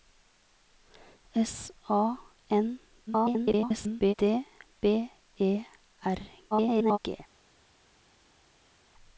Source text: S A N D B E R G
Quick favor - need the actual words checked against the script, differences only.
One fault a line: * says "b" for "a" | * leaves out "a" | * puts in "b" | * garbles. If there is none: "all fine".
* garbles
* garbles